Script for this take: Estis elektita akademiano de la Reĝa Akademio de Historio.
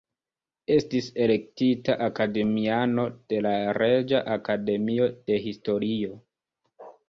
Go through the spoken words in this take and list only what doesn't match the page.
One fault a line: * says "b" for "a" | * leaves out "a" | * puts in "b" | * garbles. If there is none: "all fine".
all fine